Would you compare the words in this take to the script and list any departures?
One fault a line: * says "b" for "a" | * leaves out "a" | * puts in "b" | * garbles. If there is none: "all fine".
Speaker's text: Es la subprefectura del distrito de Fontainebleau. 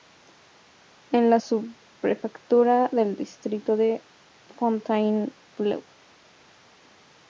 all fine